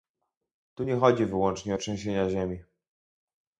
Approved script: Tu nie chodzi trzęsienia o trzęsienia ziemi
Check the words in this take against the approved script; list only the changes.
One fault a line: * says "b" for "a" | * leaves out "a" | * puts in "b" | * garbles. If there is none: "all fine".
* says "wyłącznie" for "trzęsienia"